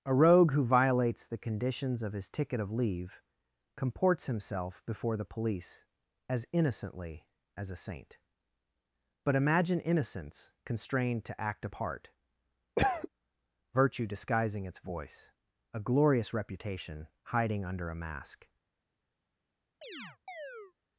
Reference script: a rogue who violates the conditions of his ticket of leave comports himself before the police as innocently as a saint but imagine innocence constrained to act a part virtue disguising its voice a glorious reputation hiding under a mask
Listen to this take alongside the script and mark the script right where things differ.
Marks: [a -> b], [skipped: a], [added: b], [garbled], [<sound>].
a rogue who violates the conditions of his ticket of leave comports himself before the police as innocently as a saint but imagine innocence constrained to act a part [cough] virtue disguising its voice a glorious reputation hiding under a mask [chirp]